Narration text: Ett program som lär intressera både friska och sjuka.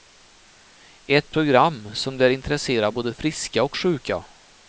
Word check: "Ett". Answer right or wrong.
right